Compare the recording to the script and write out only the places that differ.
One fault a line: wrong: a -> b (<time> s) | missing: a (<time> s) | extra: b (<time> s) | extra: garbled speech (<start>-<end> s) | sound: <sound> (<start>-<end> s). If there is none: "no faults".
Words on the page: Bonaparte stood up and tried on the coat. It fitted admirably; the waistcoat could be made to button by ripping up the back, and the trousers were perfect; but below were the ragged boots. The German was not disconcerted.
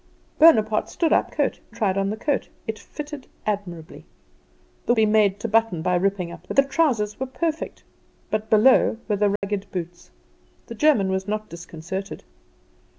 wrong: and -> coat (1.3 s)
missing: waistcoat could (4.9 s)
missing: back and (6.5 s)
sound: dropout (9.4-9.4 s)